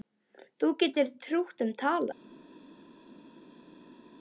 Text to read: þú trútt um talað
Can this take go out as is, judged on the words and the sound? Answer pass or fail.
fail